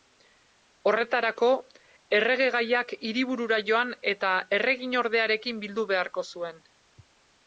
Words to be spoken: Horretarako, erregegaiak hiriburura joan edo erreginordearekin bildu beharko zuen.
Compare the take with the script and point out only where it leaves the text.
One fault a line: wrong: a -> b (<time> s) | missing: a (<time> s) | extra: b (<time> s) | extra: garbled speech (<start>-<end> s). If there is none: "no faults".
wrong: edo -> eta (4.1 s)